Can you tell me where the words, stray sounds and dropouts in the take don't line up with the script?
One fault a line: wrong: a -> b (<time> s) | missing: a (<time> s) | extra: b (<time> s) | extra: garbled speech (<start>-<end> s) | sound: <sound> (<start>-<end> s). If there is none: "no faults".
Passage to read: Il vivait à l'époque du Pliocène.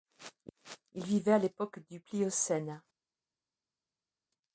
no faults